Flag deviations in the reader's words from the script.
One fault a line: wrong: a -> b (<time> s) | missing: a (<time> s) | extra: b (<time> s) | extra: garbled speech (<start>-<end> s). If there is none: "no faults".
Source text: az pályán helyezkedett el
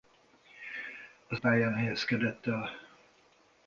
no faults